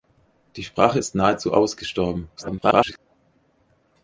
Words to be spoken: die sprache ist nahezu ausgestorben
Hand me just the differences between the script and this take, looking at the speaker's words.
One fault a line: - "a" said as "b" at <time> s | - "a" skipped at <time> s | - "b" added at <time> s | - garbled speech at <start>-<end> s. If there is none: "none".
- garbled speech at 2.4-3.0 s